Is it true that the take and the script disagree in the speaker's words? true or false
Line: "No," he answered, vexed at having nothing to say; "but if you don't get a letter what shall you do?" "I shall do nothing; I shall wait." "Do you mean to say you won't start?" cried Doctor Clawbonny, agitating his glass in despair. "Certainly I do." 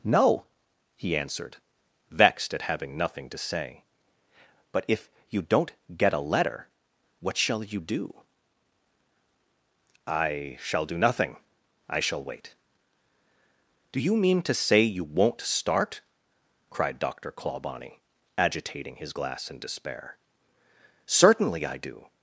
false